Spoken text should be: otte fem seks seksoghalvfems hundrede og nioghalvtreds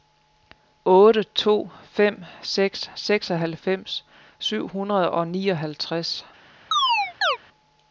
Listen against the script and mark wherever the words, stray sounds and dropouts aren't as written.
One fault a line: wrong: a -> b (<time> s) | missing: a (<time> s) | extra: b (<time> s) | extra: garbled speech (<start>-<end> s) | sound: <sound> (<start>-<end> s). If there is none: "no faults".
extra: to (1.2 s)
extra: syv (4.4 s)
sound: chirp (6.7-7.4 s)